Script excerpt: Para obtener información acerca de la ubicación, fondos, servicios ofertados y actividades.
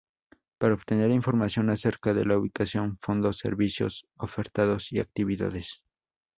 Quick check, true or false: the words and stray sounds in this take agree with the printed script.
true